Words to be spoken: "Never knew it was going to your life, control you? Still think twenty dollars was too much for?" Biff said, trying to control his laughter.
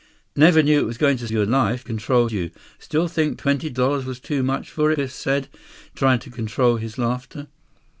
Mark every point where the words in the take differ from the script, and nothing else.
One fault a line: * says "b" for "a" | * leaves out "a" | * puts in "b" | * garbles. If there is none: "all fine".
all fine